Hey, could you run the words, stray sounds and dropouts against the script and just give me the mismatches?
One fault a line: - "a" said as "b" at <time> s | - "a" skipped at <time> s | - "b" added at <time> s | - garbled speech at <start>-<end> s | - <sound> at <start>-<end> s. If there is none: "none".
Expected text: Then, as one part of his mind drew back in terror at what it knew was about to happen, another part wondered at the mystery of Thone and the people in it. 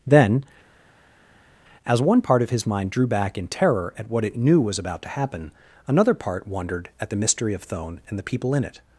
none